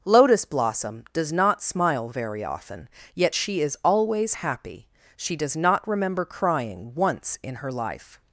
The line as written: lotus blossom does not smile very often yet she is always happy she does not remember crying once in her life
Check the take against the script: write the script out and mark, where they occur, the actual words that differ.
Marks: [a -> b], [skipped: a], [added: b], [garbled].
lotus blossom does not smile very often yet she is always happy she does not remember crying once in her life